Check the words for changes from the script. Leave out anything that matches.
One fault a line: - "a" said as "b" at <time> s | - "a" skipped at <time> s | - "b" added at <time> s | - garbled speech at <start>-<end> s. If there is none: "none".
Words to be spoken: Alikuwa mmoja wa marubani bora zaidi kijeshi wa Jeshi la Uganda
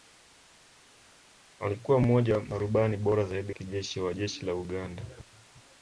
none